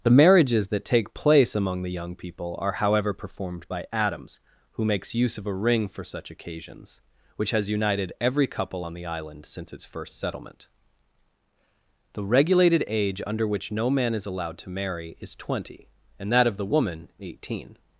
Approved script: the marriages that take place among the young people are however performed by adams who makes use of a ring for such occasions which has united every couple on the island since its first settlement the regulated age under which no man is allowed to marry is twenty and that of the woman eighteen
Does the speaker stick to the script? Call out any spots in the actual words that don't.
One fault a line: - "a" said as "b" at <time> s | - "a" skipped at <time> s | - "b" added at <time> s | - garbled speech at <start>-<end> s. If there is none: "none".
none